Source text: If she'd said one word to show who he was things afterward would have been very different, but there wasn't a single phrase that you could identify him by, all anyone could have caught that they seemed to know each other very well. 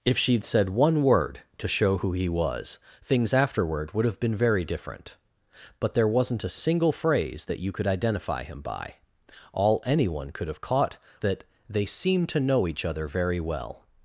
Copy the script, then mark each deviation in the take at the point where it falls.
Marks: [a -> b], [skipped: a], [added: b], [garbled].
If she'd said one word to show who he was things afterward would have been very different, but there wasn't a single phrase that you could identify him by, all anyone could have caught that they seemed to know each other very well.